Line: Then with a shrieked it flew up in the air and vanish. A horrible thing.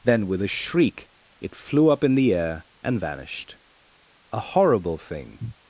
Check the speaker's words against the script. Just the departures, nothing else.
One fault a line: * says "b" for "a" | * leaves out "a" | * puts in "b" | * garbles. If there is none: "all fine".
* says "shriek" for "shrieked"
* says "vanished" for "vanish"